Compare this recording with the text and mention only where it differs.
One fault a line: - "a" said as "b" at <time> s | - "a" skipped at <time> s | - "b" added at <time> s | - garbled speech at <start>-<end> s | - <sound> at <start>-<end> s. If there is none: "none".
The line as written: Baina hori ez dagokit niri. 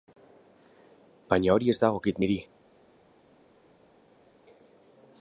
none